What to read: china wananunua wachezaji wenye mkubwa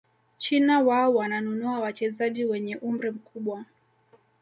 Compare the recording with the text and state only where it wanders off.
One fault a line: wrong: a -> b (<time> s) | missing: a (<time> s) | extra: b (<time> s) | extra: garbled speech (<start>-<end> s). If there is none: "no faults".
extra: wao (0.8 s)
extra: umri (2.8 s)